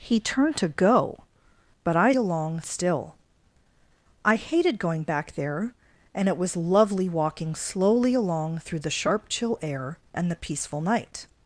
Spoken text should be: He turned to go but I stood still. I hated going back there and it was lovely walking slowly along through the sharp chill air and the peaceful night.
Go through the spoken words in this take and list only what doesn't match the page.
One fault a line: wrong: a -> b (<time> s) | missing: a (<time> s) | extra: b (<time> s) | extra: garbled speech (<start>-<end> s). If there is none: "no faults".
wrong: stood -> along (2.2 s)